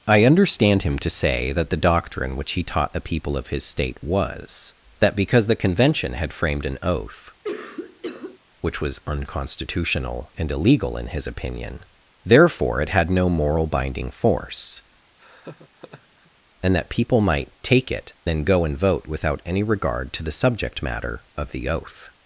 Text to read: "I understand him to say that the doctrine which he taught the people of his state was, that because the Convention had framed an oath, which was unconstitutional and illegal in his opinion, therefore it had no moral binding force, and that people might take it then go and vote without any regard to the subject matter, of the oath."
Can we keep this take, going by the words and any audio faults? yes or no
no